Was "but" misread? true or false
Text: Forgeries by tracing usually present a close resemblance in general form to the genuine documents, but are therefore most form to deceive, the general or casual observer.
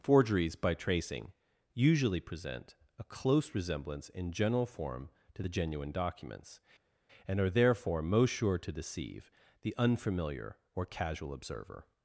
true